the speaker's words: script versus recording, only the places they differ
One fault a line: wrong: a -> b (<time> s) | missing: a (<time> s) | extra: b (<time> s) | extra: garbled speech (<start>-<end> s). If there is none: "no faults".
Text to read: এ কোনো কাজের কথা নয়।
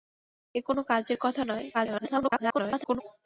extra: garbled speech (1.7-3.0 s)